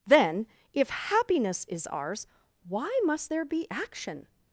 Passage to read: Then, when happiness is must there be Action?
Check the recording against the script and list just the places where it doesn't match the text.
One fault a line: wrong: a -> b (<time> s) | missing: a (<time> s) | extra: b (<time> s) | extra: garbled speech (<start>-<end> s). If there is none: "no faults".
wrong: when -> if (0.7 s)
extra: ours Why (1.9 s)